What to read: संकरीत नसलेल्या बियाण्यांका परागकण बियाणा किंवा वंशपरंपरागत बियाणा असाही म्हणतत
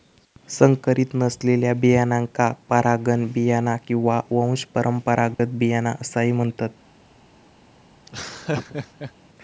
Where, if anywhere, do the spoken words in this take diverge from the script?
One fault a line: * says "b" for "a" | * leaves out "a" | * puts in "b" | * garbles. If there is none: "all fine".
all fine